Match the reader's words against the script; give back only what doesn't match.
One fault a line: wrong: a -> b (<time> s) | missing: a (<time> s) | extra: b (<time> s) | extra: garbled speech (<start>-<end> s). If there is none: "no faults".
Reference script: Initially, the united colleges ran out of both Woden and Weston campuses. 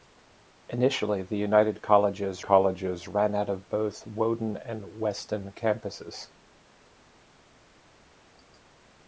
extra: colleges (2.4 s)